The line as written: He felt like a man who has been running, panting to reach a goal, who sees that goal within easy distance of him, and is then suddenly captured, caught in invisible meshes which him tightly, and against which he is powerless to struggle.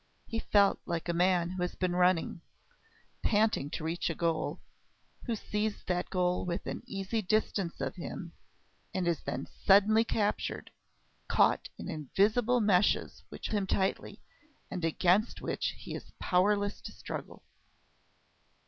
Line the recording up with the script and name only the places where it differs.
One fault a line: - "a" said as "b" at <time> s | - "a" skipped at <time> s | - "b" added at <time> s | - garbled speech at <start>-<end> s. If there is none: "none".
none